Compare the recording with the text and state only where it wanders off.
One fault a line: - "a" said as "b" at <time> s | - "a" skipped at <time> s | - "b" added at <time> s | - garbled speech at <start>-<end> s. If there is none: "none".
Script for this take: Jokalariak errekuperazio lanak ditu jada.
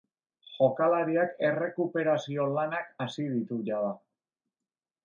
- "hasi" added at 3.1 s